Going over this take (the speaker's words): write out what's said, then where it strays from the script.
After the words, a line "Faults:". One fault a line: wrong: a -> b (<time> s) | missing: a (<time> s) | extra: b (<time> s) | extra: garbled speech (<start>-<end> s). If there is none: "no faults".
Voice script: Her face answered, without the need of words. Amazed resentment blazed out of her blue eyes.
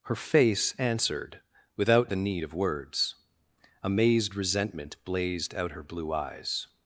Her face answered, without the need of words. Amazed resentment blazed out her blue eyes.
Faults:
missing: of (5.7 s)